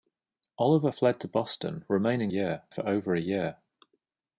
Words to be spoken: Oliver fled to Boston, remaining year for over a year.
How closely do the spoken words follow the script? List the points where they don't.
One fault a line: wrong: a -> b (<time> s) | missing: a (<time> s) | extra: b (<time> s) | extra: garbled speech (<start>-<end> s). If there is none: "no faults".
no faults